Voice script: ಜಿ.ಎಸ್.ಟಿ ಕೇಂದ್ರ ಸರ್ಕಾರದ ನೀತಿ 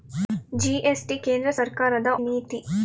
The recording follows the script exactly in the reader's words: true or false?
true